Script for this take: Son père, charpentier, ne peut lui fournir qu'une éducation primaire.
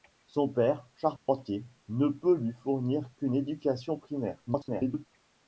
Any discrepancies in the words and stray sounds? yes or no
yes